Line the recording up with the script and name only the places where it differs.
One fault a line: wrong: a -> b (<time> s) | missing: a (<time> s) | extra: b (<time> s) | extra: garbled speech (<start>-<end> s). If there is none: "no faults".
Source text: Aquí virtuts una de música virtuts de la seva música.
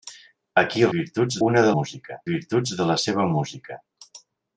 no faults